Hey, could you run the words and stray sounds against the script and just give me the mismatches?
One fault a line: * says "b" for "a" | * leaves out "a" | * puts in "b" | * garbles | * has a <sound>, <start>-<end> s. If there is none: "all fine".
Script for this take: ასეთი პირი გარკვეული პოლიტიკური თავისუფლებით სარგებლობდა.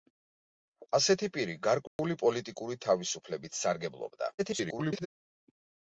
* has a dropout, 1.9-2.0 s
* garbles